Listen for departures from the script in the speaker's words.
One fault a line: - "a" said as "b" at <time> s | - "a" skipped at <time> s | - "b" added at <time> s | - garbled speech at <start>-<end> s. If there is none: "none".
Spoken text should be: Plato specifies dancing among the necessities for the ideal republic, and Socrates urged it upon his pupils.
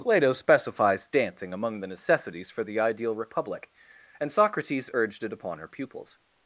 - "his" said as "her" at 5.6 s